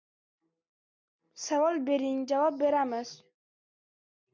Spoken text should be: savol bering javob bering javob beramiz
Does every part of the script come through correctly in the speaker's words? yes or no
no